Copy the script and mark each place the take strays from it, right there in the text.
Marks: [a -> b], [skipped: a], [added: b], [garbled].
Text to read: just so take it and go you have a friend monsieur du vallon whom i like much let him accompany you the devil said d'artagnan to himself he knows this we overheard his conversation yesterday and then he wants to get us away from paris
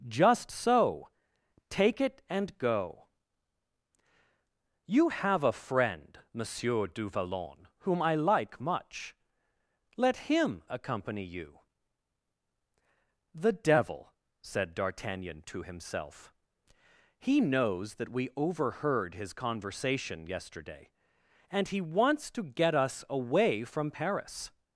just so take it and go you have a friend monsieur du vallon whom i like much let him accompany you the devil said d'artagnan to himself he knows [this -> that] we overheard his conversation yesterday and [skipped: then] he wants to get us away from paris